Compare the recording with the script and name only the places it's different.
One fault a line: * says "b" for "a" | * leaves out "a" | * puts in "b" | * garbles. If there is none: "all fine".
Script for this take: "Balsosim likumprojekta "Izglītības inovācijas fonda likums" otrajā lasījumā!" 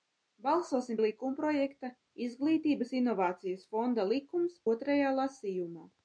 all fine